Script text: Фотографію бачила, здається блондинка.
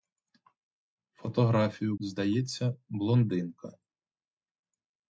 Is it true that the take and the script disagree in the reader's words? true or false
true